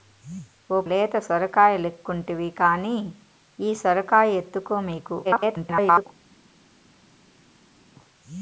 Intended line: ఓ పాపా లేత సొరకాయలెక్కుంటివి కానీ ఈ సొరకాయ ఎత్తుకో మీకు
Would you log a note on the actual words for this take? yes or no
yes